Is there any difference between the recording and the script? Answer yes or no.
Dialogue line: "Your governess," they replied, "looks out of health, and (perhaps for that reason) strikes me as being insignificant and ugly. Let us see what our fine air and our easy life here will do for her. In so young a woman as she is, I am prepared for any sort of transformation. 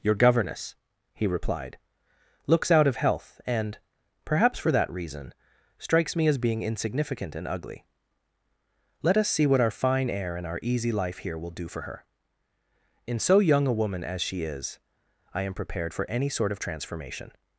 yes